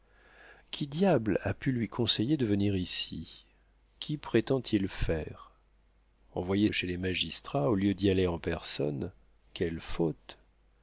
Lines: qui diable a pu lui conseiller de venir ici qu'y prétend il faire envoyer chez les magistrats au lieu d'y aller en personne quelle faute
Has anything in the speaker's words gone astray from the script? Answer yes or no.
no